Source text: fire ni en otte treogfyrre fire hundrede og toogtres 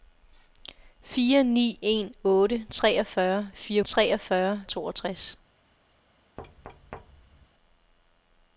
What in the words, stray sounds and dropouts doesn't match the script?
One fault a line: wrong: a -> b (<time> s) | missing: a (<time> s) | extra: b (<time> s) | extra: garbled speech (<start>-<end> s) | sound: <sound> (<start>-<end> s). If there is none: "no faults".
wrong: hundrede -> treogfyrre (3.8 s)
sound: thud (6.4-7.5 s)